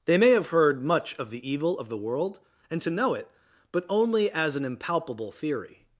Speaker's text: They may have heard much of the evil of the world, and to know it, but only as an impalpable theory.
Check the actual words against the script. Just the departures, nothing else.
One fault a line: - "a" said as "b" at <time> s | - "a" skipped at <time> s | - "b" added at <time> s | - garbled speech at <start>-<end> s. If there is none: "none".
none